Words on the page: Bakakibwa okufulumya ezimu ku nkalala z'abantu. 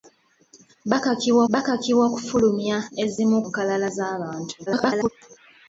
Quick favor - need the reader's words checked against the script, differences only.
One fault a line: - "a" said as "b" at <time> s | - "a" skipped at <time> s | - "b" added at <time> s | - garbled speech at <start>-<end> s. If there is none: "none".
- "bakakibwa" added at 1.5 s
- "ku" skipped at 3.4 s
- garbled speech at 4.7-5.1 s